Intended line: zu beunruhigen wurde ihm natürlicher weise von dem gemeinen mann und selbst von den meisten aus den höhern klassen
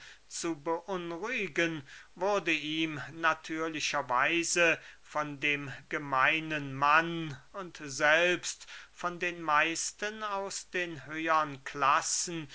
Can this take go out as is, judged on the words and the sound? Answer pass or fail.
pass